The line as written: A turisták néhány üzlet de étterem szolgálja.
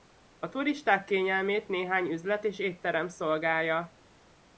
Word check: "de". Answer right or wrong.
wrong